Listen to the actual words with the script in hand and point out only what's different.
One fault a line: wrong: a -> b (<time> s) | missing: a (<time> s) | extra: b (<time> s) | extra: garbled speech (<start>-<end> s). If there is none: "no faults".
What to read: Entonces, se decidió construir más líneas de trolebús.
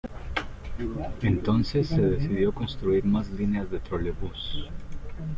no faults